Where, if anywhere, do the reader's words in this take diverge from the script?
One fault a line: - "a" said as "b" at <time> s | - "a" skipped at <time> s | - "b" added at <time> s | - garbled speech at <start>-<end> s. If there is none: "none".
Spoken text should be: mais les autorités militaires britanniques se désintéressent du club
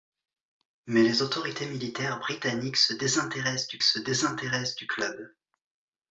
- "se désintéressent du" added at 3.8 s